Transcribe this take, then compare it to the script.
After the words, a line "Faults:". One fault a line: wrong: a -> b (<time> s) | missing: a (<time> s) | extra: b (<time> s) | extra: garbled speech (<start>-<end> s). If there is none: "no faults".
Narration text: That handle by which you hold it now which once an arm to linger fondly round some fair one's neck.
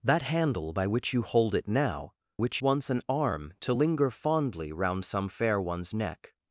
That handle by which you hold it now which once an arm to linger fondly round some fair one's neck.
Faults:
no faults